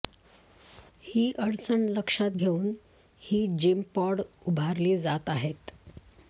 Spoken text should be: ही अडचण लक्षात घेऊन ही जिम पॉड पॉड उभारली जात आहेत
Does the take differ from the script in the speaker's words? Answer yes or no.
yes